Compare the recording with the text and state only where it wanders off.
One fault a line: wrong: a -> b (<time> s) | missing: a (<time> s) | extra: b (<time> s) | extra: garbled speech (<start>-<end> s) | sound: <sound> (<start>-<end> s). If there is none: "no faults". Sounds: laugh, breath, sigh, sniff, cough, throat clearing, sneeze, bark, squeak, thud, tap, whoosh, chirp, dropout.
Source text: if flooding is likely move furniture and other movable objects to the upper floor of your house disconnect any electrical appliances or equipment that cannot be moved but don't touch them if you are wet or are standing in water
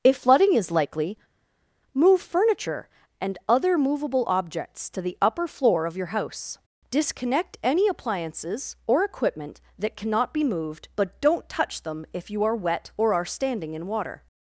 missing: electrical (7.9 s)